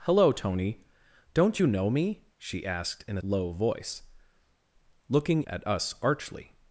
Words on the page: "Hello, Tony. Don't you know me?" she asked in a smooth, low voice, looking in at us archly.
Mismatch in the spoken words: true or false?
true